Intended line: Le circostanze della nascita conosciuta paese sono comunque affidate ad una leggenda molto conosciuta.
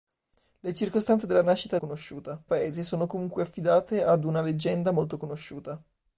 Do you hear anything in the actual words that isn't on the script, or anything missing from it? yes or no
no